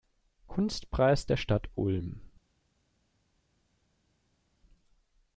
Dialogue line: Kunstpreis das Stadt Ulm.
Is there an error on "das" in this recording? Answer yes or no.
yes